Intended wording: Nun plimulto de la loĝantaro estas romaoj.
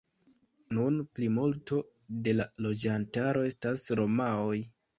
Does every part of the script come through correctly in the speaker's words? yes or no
yes